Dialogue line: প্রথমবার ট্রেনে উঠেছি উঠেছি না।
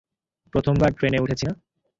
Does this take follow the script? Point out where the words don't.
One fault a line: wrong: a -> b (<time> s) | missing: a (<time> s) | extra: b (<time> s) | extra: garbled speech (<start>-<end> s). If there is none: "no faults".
missing: উঠেছি (1.4 s)